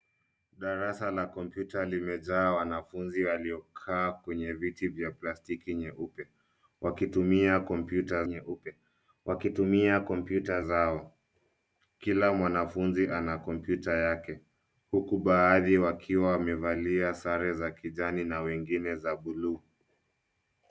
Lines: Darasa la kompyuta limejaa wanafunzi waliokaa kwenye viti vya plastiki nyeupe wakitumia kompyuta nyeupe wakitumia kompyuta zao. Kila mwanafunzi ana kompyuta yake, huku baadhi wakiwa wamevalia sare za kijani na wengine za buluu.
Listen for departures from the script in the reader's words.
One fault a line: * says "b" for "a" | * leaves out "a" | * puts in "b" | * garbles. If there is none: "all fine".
all fine